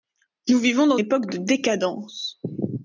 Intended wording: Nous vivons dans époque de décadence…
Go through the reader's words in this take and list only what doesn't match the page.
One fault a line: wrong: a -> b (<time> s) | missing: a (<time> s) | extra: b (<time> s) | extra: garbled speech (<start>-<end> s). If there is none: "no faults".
no faults